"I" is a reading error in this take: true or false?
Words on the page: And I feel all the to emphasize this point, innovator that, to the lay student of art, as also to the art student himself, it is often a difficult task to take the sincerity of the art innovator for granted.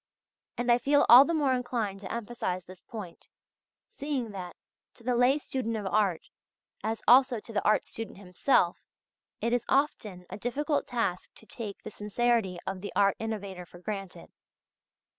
false